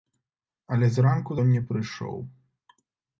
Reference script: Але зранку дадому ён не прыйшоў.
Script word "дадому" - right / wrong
wrong